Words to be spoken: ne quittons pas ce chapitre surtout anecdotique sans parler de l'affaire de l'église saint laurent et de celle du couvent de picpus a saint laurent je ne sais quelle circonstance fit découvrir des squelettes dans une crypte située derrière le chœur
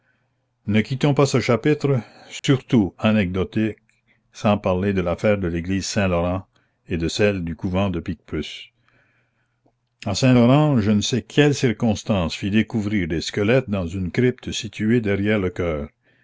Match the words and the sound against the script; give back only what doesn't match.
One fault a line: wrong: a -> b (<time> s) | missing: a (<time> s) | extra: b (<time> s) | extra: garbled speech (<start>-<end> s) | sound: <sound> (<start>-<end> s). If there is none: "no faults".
sound: dropout (2.4-2.4 s)